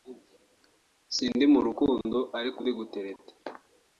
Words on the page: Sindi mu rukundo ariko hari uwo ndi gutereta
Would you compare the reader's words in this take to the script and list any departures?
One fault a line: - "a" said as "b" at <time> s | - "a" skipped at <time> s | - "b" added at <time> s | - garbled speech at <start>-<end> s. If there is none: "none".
- "hari uwo" skipped at 2.6 s